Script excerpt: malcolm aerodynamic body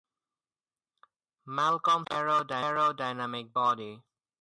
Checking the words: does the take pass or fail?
pass